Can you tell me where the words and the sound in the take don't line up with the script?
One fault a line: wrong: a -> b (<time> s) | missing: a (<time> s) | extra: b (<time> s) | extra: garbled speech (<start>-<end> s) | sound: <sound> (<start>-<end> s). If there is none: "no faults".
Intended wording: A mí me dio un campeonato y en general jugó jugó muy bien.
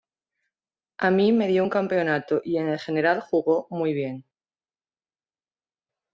missing: jugó (3.7 s)